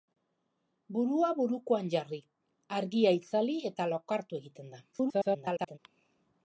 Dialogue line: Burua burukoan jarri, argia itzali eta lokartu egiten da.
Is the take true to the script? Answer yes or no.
no